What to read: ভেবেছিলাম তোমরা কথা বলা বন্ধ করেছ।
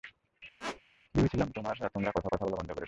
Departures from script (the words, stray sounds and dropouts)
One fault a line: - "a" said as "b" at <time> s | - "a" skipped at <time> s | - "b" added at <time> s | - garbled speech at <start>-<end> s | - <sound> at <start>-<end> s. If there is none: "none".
- squeak at 0.6-0.8 s
- "কথা" added at 2.3 s